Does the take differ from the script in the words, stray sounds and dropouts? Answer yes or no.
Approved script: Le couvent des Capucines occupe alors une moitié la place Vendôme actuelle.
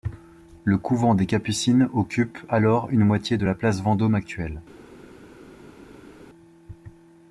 yes